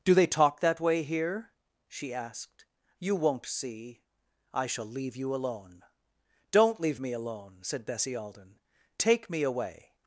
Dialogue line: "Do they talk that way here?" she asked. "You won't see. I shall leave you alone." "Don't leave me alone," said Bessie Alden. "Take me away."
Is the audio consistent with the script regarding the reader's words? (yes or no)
yes